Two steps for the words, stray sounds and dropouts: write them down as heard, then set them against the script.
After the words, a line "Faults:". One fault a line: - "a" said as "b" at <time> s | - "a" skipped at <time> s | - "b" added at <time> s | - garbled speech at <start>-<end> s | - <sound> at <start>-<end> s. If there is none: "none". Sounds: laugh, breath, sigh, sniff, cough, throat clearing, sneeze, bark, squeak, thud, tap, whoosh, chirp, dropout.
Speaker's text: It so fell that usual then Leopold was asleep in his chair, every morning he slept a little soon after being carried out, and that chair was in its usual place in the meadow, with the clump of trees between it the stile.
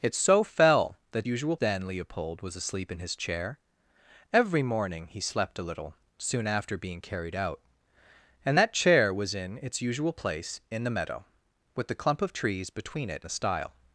It so fell that usual then Leopold was asleep in his chair, every morning he slept a little soon after being carried out, and that chair was in its usual place in the meadow, with the clump of trees between it the stile.
Faults:
none